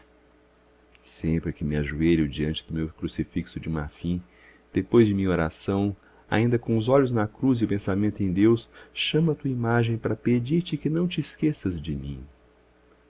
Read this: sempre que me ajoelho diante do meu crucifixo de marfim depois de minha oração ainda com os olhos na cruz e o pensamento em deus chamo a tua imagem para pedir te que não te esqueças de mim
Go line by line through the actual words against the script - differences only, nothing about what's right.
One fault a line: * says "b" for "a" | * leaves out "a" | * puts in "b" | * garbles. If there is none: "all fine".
all fine